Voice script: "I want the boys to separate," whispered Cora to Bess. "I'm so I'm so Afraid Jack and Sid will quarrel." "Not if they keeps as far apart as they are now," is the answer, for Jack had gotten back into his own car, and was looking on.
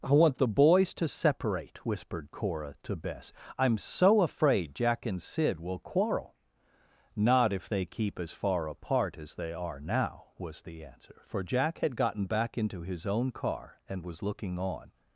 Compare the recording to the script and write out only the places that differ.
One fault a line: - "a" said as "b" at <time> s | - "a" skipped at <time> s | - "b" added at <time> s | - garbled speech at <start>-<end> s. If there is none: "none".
- "I'm so" skipped at 4.2 s
- "keeps" said as "keep" at 7.8 s
- "is" said as "was" at 10.4 s